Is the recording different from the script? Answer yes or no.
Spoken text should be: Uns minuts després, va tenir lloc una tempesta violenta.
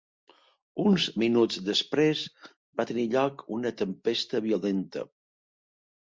no